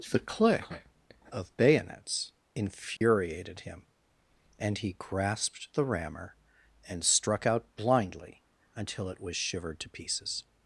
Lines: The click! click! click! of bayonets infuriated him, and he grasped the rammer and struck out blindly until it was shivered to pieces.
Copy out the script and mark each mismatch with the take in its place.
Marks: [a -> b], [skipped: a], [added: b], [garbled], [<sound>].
The click! [skipped: click! click!] of bayonets infuriated [dropout] him, and he grasped the rammer and struck out blindly until it was shivered to pieces.